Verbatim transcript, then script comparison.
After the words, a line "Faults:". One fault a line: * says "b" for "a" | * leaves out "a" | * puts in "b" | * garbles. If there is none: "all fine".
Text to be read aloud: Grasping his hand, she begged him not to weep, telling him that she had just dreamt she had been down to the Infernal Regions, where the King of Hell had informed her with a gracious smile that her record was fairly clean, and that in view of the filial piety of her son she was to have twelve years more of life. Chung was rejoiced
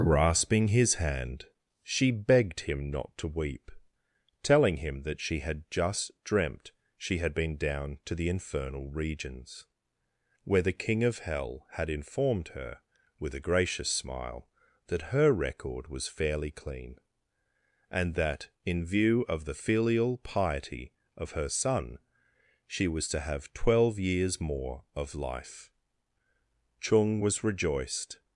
Grasping his hand, she begged him not to weep, telling him that she had just dreamt she had been down to the Infernal Regions, where the King of Hell had informed her with a gracious smile that her record was fairly clean, and that in view of the filial piety of her son she was to have twelve years more of life. Chung was rejoiced
Faults:
all fine